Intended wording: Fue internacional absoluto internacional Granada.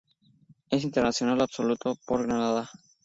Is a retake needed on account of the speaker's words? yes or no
yes